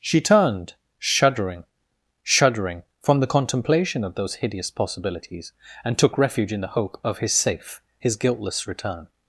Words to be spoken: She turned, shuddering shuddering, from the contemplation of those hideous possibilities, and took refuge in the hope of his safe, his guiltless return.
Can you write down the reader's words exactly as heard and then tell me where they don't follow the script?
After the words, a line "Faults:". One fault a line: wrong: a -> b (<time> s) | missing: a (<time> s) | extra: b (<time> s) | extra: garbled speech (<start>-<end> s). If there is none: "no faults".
She turned, shuddering shuddering, from the contemplation of those hideous possibilities, and took refuge in the hope of his safe, his guiltless return.
Faults:
no faults